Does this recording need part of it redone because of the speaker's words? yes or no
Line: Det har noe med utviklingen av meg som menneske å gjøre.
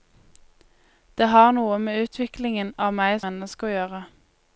yes